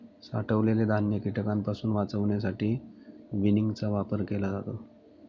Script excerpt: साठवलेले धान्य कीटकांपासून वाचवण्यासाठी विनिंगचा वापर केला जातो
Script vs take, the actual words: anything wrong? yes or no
no